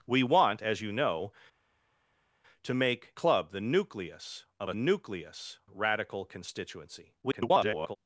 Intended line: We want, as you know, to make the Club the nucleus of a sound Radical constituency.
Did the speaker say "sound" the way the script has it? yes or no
no